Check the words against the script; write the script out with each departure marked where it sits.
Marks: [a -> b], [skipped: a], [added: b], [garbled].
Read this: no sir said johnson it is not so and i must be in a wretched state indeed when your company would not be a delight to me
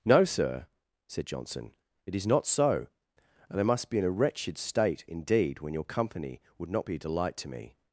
no sir said johnson it is not so and i must be in a wretched state indeed when your company would not be a delight to me